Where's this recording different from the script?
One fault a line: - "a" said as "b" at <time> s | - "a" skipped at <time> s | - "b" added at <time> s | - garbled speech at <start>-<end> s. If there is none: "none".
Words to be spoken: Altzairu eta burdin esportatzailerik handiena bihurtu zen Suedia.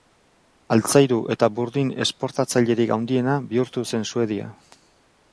none